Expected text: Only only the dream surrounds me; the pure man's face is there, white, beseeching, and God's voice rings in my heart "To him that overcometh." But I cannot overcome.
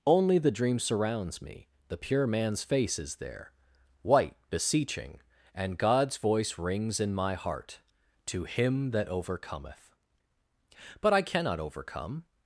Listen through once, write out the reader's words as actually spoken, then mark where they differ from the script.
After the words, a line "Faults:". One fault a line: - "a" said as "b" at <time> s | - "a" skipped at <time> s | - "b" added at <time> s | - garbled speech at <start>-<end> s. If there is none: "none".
Only the dream surrounds me; the pure man's face is there, white, beseeching, and God's voice rings in my heart "To him that overcometh." But I cannot overcome.
Faults:
- "only" skipped at 0.4 s